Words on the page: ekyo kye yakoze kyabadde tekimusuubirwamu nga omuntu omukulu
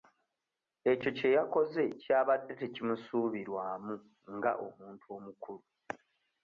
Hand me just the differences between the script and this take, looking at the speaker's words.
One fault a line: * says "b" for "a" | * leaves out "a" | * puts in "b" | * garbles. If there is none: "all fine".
all fine